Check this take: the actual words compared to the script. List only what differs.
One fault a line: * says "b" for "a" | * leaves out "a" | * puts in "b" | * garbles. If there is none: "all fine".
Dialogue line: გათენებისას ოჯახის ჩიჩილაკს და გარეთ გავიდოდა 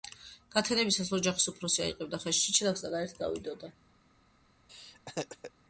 * puts in "უფროსი აიღებდა ხელში"